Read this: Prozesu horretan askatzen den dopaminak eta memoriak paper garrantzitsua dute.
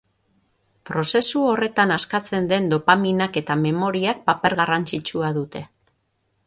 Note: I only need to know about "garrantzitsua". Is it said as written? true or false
true